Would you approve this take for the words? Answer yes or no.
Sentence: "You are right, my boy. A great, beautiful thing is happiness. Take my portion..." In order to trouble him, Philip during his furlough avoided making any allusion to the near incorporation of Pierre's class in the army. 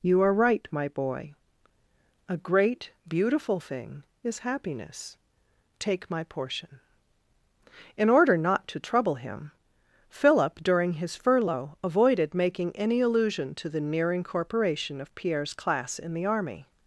no